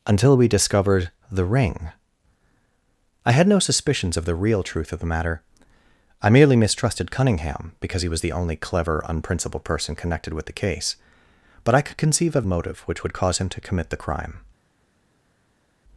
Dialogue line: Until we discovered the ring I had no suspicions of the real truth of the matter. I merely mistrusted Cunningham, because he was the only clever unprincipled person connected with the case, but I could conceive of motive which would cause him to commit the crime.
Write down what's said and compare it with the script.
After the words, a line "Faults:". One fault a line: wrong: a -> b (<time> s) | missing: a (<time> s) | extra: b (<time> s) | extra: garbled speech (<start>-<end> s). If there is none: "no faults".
Until we discovered the ring I had no suspicions of the real truth of the matter. I merely mistrusted Cunningham, because he was the only clever unprincipled person connected with the case, but I could conceive of motive which would cause him to commit the crime.
Faults:
no faults